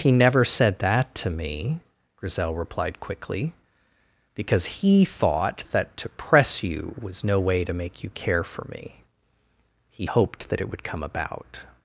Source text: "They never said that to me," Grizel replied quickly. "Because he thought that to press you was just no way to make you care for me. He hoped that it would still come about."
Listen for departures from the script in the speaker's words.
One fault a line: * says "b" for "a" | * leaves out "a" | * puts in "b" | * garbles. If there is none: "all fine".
* says "He" for "They"
* leaves out "just"
* leaves out "still"